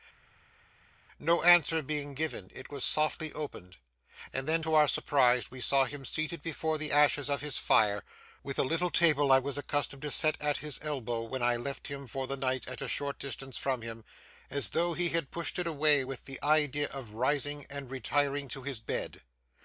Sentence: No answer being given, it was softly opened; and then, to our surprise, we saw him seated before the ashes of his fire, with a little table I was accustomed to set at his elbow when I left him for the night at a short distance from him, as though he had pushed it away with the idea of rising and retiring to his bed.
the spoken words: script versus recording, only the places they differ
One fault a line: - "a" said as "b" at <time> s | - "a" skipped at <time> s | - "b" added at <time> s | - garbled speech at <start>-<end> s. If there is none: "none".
none